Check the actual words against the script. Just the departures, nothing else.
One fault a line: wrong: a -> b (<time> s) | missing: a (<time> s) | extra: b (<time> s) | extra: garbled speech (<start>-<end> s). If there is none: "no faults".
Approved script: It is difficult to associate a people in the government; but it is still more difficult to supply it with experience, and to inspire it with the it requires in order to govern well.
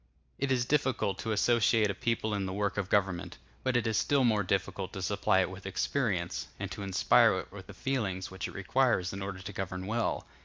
extra: work of (2.5 s)
extra: feelings which (7.7 s)